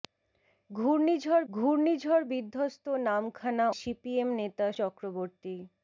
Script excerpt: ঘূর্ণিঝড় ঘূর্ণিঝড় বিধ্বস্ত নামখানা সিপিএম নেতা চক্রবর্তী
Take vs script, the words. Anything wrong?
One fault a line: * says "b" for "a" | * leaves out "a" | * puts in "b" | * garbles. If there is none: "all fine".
all fine